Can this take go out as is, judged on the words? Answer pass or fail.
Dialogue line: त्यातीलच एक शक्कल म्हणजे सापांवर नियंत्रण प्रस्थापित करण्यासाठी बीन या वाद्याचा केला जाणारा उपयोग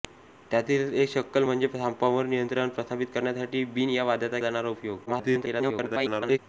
fail